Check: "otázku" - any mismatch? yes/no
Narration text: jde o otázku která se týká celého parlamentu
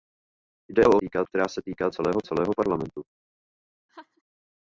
yes